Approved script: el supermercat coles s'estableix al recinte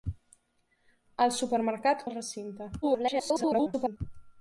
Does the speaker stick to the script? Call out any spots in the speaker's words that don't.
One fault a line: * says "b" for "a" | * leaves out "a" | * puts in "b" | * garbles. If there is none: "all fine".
* leaves out "coles s'estableix"
* garbles